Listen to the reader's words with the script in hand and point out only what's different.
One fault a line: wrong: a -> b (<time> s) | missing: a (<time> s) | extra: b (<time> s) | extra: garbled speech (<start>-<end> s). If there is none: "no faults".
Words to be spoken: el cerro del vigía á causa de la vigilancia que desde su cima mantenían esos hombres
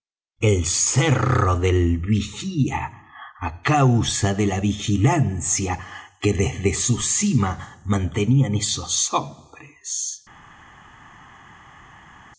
no faults